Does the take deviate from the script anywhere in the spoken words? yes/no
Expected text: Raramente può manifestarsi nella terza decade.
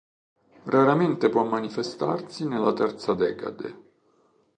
no